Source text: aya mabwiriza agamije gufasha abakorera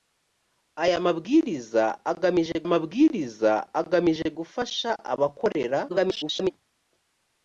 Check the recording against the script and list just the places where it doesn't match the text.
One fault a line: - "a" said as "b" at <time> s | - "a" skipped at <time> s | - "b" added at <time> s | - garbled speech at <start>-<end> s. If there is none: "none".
- "mabwiriza agamije" added at 2.7 s
- garbled speech at 5.9-6.5 s